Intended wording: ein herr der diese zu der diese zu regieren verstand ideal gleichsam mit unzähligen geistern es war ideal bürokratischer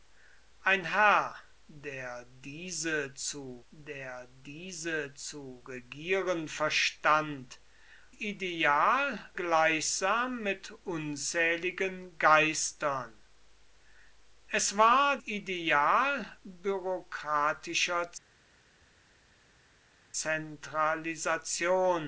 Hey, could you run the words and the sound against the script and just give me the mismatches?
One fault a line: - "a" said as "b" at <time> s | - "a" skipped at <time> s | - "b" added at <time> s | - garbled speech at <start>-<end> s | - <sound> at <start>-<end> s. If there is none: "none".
none